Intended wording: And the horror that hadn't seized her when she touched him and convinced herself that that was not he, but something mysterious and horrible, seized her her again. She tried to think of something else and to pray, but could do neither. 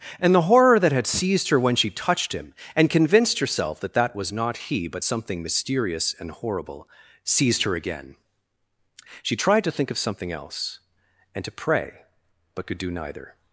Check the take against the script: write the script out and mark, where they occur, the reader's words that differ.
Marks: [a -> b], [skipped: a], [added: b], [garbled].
And the horror that [hadn't -> had] seized her when she touched him and convinced herself that that was not he, but something mysterious and horrible, seized her [skipped: her] again. She tried to think of something else and to pray, but could do neither.